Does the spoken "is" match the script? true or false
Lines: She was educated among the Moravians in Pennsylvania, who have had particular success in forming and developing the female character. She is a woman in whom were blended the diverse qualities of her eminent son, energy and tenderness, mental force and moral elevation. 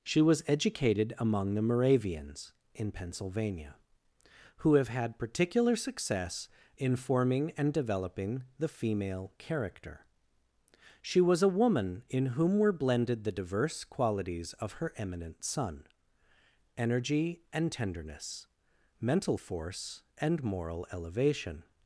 false